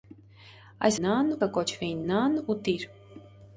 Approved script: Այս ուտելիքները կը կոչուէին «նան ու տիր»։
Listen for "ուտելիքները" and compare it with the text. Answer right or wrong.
wrong